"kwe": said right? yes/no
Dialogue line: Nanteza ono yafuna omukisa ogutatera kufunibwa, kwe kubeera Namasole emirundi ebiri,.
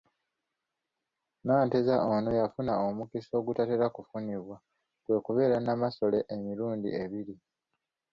yes